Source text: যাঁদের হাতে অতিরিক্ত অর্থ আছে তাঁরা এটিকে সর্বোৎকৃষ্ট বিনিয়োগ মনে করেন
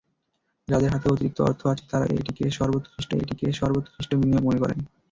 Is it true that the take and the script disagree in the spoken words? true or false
true